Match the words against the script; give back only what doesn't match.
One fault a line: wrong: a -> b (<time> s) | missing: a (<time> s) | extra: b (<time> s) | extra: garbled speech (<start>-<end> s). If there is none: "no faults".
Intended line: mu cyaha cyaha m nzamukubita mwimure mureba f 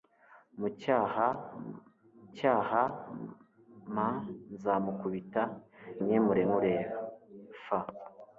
no faults